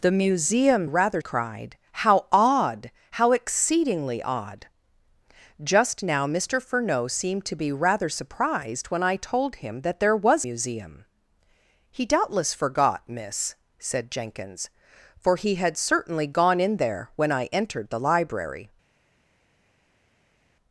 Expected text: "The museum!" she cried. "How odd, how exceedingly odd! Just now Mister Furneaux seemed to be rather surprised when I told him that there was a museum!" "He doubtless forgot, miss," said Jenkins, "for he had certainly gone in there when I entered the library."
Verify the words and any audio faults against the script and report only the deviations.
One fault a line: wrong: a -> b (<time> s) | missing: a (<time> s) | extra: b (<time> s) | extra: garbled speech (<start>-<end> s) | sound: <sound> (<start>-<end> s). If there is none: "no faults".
wrong: she -> rather (0.8 s)
missing: a (10.5 s)